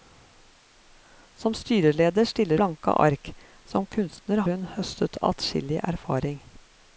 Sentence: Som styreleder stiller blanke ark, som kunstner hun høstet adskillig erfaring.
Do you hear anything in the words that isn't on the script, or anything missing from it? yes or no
no